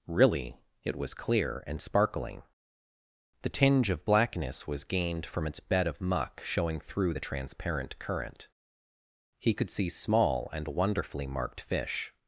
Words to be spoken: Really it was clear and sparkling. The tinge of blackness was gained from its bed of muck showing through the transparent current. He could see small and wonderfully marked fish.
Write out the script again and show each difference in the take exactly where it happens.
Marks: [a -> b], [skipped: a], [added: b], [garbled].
Really it was clear and sparkling. The tinge of blackness was gained from its bed of muck showing through the transparent current. He could see small and wonderfully marked fish.